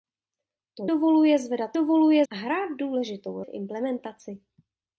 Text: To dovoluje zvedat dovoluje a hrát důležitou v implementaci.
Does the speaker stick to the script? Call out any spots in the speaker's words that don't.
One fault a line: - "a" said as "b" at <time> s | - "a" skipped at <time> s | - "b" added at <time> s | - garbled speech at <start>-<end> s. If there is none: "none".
none